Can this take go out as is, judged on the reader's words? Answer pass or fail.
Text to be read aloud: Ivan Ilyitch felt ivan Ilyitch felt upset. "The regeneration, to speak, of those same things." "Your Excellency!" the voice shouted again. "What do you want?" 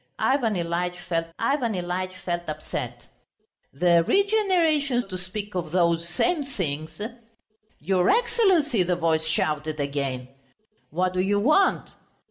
pass